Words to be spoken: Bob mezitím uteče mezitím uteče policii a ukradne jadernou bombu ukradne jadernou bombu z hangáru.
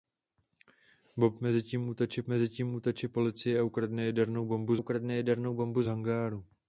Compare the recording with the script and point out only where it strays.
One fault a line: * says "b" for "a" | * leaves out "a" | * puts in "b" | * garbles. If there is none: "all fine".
all fine